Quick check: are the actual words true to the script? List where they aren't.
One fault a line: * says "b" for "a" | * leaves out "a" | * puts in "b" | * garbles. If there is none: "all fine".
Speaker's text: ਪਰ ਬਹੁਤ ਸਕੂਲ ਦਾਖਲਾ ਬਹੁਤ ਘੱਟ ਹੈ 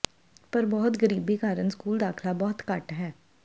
* puts in "ਗਰੀਬੀ ਕਾਰਨ"